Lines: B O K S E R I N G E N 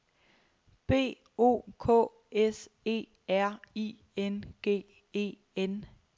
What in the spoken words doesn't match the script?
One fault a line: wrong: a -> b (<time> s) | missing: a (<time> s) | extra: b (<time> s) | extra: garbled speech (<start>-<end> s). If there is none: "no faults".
no faults